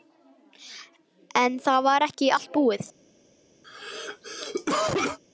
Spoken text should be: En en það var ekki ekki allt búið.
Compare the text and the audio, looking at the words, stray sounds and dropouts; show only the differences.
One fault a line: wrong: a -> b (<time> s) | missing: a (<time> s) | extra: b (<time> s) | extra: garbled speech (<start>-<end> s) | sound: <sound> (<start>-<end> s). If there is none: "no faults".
missing: en (1.6 s)
missing: ekki (2.3 s)
sound: cough (3.6-5.2 s)